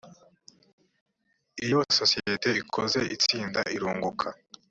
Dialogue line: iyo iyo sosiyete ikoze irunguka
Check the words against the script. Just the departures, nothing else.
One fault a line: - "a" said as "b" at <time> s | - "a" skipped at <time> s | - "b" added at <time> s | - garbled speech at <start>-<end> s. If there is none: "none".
- "iyo" skipped at 1.8 s
- "itsinda" added at 3.1 s